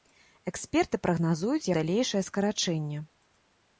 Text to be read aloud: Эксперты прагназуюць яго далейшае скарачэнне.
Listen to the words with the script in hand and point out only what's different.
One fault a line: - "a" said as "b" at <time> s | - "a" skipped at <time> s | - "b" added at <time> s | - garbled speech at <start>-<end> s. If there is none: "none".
- "яго" skipped at 1.7 s